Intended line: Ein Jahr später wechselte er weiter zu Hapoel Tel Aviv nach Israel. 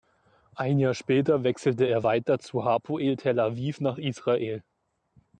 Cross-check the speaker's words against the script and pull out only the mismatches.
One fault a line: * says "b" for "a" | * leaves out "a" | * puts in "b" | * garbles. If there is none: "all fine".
all fine